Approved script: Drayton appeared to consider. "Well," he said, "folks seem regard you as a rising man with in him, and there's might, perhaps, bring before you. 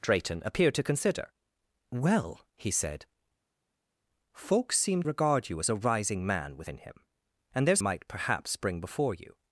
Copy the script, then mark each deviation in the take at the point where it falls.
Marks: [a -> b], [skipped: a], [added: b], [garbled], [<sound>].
Drayton appeared to consider. "Well," he said, "folks seem regard you as a rising man with in him, and there's might, perhaps, bring before you.